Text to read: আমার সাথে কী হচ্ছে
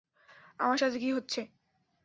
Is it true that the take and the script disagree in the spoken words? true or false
false